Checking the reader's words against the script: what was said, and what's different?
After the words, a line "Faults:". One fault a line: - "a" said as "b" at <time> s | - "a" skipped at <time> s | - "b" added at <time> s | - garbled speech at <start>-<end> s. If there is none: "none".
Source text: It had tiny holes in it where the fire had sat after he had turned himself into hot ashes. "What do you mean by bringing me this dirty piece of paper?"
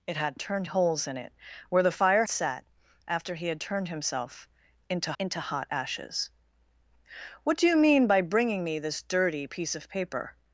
It had turned holes in it where the fire sat after he had turned himself into into hot ashes. "What do you mean by bringing me this dirty piece of paper?"
Faults:
- "tiny" said as "turned" at 0.4 s
- "had" skipped at 2.2 s
- "into" added at 5.2 s